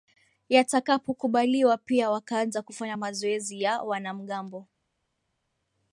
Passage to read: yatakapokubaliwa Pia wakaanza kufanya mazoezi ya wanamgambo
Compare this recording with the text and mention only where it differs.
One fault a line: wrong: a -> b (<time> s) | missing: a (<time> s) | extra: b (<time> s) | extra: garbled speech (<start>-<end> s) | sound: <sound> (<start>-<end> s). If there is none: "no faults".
no faults